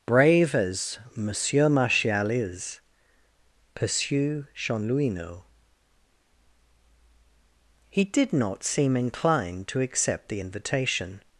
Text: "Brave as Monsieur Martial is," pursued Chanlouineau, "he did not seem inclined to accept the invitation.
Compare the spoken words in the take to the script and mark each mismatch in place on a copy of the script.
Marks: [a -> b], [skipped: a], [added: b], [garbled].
"Brave as Monsieur Martial is," [pursued -> pursue] Chanlouineau, "he did not seem inclined to accept the invitation.